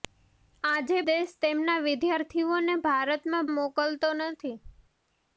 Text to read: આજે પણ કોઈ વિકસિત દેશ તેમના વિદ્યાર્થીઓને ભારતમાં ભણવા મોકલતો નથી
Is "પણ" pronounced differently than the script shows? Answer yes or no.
yes